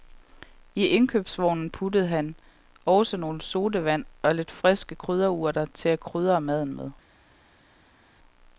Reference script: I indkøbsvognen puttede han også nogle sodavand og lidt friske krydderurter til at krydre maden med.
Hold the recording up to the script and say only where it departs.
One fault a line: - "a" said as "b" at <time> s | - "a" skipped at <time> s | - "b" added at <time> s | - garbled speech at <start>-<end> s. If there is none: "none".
none